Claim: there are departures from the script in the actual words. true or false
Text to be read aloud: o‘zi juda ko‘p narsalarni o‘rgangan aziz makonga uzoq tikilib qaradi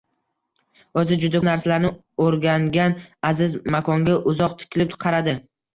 true